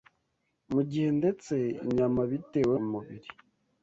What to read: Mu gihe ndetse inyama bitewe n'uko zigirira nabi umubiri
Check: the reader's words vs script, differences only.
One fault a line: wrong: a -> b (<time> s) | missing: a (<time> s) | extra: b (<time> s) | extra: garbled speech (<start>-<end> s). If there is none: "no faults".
missing: n'uko zigirira nabi (2.8 s)